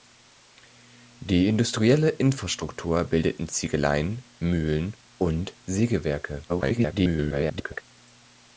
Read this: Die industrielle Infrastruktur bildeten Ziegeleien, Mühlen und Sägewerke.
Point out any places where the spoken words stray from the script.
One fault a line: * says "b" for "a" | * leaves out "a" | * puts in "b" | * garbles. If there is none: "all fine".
* garbles